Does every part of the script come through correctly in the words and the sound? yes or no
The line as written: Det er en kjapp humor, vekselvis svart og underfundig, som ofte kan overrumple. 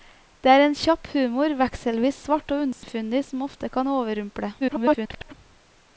no